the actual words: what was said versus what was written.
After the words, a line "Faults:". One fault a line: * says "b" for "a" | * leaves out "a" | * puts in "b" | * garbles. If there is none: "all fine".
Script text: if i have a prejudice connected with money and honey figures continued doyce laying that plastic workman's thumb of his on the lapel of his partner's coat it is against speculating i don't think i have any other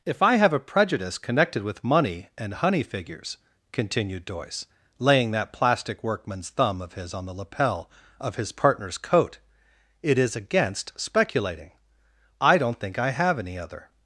if i have a prejudice connected with money and honey figures continued doyce laying that plastic workman's thumb of his on the lapel of his partner's coat it is against speculating i don't think i have any other
Faults:
all fine